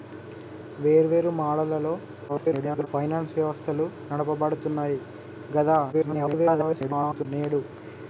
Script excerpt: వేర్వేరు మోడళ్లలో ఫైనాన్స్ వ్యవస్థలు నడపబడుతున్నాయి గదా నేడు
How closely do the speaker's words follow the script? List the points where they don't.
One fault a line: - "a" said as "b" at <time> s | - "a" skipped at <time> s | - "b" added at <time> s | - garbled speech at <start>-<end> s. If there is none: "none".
- garbled speech at 2.3-2.9 s
- garbled speech at 5.9-7.3 s